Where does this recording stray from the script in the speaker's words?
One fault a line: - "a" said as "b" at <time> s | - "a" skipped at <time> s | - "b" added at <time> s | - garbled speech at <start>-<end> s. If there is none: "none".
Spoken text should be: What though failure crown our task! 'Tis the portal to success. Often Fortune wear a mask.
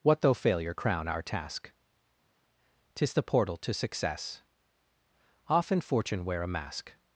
none